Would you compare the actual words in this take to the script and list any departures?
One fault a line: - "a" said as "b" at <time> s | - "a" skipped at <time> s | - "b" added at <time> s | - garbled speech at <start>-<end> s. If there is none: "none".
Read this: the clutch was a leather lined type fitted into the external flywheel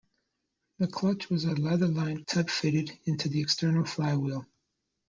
none